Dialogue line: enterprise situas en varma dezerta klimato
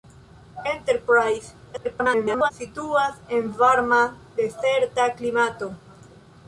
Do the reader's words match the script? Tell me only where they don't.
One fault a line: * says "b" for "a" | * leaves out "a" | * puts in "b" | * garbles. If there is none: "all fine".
* garbles